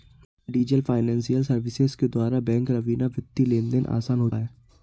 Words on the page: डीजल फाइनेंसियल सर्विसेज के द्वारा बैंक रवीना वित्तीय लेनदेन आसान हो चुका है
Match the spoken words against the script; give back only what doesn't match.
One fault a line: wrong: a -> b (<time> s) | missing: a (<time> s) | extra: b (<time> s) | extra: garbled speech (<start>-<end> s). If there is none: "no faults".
missing: चुका (4.3 s)